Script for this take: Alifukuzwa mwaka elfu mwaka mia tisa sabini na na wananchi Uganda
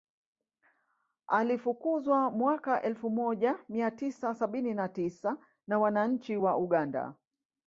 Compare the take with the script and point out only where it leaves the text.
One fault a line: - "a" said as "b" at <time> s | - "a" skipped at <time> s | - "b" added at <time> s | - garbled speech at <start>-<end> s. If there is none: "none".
- "mwaka" said as "moja" at 3.1 s
- "tisa" added at 4.9 s
- "wa" added at 6.3 s